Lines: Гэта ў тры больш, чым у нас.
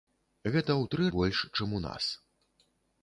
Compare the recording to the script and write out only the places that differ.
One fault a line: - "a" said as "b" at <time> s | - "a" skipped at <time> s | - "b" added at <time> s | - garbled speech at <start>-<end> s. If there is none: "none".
none